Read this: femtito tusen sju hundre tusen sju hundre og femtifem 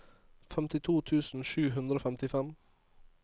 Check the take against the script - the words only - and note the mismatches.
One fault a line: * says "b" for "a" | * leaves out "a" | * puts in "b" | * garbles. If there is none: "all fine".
* leaves out "tusen sju hundre"